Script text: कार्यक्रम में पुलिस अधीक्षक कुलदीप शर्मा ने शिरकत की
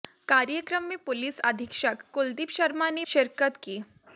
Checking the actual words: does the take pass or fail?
pass